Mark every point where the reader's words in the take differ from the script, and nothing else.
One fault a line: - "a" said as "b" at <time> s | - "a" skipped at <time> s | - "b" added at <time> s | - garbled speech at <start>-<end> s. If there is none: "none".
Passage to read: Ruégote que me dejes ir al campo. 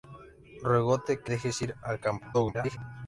- "me" skipped at 1.3 s
- garbled speech at 2.3-2.8 s